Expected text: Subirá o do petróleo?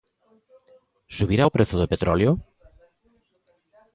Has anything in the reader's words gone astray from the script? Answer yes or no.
yes